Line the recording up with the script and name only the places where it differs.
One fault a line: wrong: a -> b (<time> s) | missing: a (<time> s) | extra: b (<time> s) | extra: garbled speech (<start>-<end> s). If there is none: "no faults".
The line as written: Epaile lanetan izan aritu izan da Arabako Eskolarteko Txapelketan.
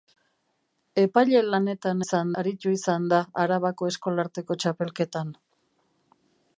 no faults